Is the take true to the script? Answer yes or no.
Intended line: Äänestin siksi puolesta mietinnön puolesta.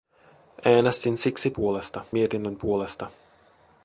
yes